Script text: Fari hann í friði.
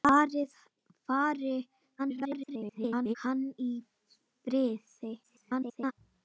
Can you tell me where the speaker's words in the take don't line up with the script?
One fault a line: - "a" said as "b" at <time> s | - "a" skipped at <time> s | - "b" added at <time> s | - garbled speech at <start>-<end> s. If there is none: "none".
- garbled speech at 2.0-3.1 s
- garbled speech at 5.2-5.9 s